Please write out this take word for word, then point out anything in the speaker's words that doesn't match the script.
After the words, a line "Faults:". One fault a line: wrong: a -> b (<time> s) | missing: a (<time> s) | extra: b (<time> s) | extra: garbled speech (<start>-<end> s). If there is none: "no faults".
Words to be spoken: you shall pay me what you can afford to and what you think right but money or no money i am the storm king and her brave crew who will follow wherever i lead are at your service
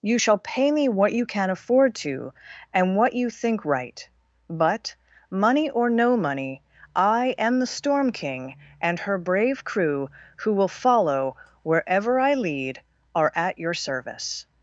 you shall pay me what you can afford to and what you think right but money or no money i am the storm king and her brave crew who will follow wherever i lead are at your service
Faults:
no faults